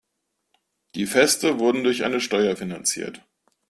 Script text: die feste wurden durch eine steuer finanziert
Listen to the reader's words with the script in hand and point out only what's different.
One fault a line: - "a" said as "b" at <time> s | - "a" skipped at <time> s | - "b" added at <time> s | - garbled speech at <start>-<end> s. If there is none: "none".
none